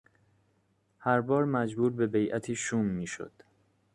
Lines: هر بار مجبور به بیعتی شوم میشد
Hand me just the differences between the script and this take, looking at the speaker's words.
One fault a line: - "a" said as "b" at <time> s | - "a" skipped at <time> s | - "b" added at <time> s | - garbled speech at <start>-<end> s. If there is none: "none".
none